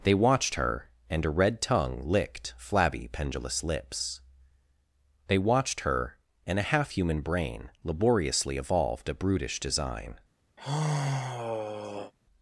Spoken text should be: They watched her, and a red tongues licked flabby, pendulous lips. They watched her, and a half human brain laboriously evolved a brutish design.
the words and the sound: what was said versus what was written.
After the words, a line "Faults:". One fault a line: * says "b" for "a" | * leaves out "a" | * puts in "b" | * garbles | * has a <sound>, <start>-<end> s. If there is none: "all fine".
They watched her, and a red tongue licked flabby, pendulous lips. They watched her, and a half human brain laboriously evolved a brutish design.
Faults:
* says "tongue" for "tongues"
* has a sigh, 10.6-12.1 s